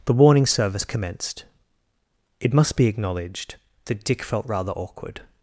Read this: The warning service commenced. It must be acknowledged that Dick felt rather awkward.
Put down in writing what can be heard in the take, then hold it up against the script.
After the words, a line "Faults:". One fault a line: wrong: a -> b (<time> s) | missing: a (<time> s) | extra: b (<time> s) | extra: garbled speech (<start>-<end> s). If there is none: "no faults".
The warning service commenced. It must be acknowledged that Dick felt rather awkward.
Faults:
no faults